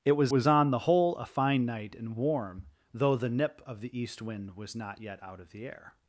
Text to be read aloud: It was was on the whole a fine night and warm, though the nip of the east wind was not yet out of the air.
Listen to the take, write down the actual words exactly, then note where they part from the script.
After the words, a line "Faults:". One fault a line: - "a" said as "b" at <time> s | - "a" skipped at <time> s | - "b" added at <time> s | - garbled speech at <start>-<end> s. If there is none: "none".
It was was on the whole a fine night and warm, though the nip of the east wind was not yet out of the air.
Faults:
none